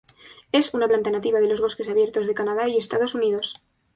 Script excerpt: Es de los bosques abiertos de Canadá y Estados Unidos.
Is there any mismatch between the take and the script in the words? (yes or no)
yes